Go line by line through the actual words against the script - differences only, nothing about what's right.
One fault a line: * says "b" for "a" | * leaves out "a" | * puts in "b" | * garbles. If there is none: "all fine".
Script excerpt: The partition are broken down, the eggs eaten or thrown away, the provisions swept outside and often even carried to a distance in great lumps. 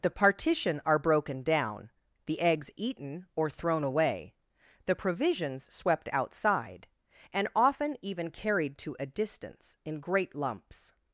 all fine